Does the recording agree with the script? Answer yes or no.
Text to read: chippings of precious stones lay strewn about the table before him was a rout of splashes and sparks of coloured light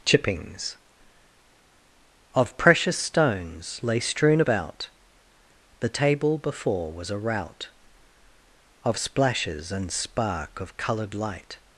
no